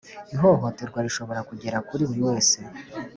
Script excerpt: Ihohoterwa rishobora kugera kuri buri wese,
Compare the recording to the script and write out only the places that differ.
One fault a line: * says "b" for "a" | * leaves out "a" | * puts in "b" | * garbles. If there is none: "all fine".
all fine